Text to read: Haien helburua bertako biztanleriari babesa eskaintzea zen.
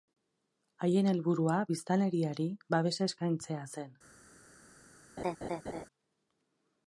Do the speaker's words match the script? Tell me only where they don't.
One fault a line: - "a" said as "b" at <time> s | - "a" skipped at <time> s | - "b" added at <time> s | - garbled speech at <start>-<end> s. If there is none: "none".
- "bertako" skipped at 1.6 s